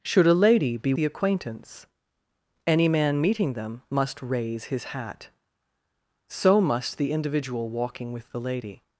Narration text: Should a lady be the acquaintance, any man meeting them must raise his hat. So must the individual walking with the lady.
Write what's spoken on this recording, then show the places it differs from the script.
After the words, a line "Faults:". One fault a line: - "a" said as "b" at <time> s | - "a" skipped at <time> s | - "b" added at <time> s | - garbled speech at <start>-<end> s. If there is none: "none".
Should a lady be the acquaintance, any man meeting them must raise his hat. So must the individual walking with the lady.
Faults:
none